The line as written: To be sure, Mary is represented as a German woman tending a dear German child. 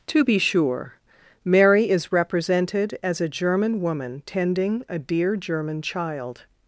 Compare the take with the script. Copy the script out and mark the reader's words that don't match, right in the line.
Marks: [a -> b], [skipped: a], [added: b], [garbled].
To be sure, Mary is represented as a German woman tending a dear German child.